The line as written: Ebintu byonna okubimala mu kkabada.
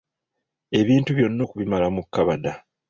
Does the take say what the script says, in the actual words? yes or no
yes